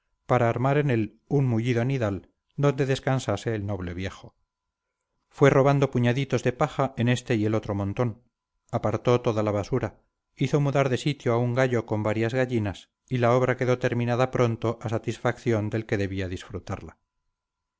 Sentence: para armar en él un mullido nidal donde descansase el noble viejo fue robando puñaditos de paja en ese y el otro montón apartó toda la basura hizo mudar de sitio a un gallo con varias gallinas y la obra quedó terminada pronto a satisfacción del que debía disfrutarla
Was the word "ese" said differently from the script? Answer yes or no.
yes